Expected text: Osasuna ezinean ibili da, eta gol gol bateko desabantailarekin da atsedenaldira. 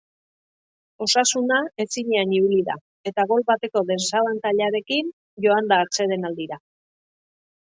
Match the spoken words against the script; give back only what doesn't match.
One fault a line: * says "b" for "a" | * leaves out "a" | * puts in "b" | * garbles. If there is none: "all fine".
* leaves out "gol"
* puts in "joan"